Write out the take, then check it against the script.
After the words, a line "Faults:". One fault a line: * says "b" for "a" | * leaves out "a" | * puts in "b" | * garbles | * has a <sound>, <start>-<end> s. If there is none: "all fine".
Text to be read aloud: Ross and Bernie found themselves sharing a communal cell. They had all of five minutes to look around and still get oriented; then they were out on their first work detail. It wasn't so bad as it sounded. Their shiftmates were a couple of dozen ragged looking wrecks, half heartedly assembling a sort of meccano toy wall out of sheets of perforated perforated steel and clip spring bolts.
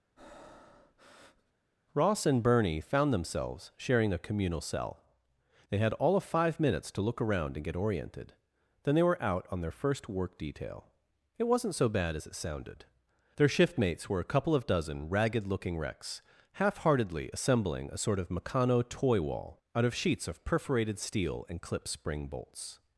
Ross and Bernie found themselves sharing a communal cell. They had all of five minutes to look around and get oriented; then they were out on their first work detail. It wasn't so bad as it sounded. Their shiftmates were a couple of dozen ragged looking wrecks, half heartedly assembling a sort of meccano toy wall out of sheets of perforated steel and clip spring bolts.
Faults:
* has a breath, 0.2-1.5 s
* leaves out "still"
* leaves out "perforated"